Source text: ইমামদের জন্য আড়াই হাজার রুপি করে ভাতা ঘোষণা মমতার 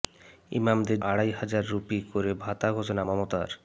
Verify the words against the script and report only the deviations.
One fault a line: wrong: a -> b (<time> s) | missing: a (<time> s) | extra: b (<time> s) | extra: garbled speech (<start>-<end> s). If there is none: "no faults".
missing: জন্য (1.0 s)